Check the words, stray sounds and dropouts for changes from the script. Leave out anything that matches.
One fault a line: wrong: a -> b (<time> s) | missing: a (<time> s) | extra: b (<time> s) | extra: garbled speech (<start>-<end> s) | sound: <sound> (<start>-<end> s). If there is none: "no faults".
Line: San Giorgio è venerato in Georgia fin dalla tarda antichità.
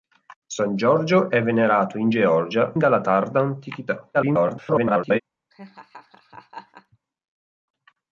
missing: fin (2.8 s)
extra: garbled speech (4.1-5.2 s)
sound: laugh (5.5-7.0 s)